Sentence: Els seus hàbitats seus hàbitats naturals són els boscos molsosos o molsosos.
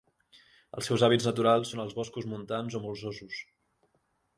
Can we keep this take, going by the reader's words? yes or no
no